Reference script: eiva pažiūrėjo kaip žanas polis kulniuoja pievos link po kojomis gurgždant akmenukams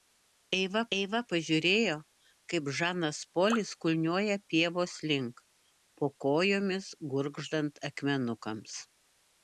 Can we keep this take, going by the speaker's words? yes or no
no